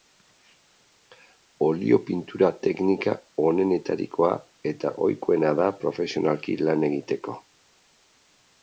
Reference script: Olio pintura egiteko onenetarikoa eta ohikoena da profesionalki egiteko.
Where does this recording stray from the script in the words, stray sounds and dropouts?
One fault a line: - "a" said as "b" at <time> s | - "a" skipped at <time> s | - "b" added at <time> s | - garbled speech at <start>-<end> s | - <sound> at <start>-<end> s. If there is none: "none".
- "egiteko" said as "teknika" at 2.7 s
- "lan" added at 6.7 s